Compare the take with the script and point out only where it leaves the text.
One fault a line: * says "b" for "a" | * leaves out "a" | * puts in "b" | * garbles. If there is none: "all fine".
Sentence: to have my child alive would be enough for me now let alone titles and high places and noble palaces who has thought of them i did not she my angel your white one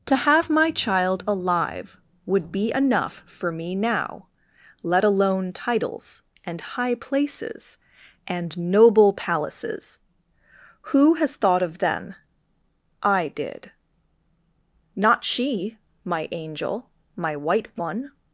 * says "my" for "your"